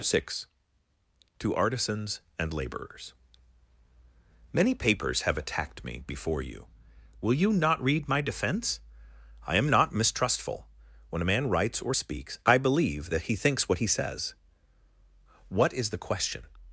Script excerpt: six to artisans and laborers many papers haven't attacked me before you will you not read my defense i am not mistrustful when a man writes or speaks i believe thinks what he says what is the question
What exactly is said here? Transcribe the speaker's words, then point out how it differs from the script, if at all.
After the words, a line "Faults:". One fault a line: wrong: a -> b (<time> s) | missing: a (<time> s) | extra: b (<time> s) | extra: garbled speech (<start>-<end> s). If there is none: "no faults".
six to artisans and laborers many papers have attacked me before you will you not read my defense i am not mistrustful when a man writes or speaks i believe that he thinks what he says what is the question
Faults:
wrong: haven't -> have (5.2 s)
extra: that he (13.1 s)